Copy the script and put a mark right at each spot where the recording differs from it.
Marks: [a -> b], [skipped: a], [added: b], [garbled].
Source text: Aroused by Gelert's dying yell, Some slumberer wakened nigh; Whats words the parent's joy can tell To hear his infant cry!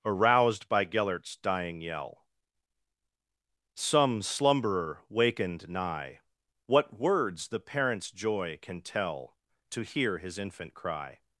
Aroused by Gelert's dying yell, Some slumberer wakened nigh; [Whats -> What] words the parent's joy can tell To hear his infant cry!